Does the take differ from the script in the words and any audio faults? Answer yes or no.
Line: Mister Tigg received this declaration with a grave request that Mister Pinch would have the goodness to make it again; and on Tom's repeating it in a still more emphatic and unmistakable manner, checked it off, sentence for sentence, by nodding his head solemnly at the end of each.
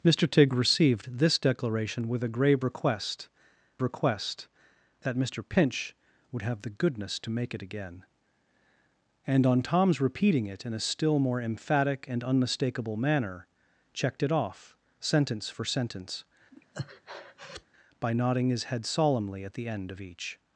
yes